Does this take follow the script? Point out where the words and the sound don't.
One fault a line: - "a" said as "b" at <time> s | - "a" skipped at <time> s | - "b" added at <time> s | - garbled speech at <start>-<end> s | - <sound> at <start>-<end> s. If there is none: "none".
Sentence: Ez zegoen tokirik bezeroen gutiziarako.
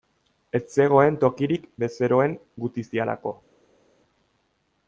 none